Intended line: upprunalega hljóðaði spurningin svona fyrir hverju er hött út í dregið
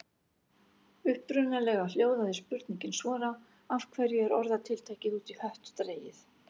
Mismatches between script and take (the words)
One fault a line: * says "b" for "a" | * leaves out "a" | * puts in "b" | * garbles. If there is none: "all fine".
* says "af" for "fyrir"
* says "orðatiltækið" for "hött"
* puts in "hött"